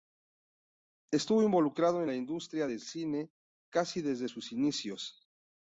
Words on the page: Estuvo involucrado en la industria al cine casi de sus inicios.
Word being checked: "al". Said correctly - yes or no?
no